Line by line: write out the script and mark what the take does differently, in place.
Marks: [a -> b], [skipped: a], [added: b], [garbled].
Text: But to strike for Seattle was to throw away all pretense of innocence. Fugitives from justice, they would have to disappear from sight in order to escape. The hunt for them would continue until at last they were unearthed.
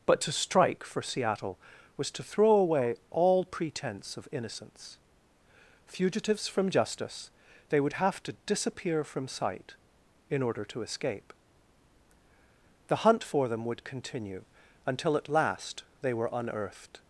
But to strike for Seattle was to throw away all pretense of innocence. Fugitives from justice, they would have to disappear from sight in order to escape. The hunt for them would continue until at last they were unearthed.